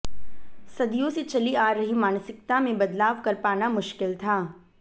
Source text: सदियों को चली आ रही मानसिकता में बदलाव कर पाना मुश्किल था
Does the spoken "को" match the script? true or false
false